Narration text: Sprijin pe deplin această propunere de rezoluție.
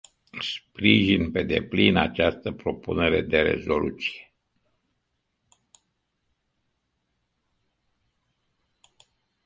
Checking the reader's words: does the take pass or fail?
pass